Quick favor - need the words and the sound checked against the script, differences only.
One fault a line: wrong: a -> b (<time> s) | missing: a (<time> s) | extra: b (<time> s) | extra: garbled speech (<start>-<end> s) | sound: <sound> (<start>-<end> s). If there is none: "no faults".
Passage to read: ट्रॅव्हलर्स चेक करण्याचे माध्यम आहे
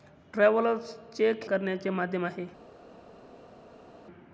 no faults